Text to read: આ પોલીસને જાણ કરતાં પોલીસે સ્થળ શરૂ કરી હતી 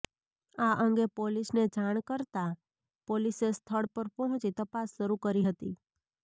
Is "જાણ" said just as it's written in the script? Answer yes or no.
yes